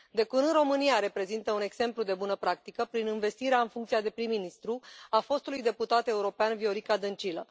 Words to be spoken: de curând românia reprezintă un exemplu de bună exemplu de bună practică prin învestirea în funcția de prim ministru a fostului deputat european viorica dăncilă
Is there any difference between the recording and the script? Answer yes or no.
yes